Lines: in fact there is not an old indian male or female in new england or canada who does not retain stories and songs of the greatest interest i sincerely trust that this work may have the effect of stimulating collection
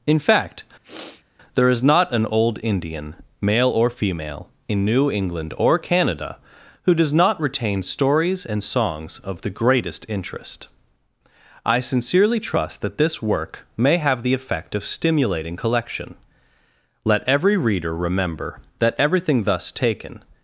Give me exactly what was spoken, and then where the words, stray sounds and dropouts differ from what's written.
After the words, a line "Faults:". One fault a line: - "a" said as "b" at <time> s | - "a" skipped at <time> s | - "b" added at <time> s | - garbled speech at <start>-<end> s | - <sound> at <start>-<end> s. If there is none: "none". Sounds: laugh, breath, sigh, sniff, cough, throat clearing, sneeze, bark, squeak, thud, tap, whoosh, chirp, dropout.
in fact there is not an old indian male or female in new england or canada who does not retain stories and songs of the greatest interest i sincerely trust that this work may have the effect of stimulating collection let every reader remember that everything thus taken
Faults:
- sniff at 0.8-1.2 s
- "let every reader remember that everything thus taken" added at 17.0 s